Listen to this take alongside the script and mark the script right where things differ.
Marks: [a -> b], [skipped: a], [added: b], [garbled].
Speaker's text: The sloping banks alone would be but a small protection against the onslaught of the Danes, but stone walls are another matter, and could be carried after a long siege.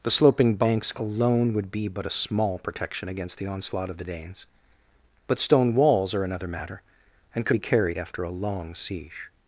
The sloping banks alone would be but a small protection against the onslaught of the Danes, but stone walls are another matter, and could be carried after a long siege.